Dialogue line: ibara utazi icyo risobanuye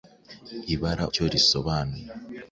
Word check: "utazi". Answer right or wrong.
wrong